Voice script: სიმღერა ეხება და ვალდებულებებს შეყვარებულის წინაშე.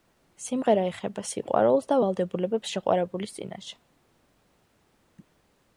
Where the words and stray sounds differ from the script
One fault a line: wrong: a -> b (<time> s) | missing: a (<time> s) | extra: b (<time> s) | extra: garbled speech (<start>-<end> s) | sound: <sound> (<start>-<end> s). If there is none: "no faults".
extra: სიყვარულს (1.3 s)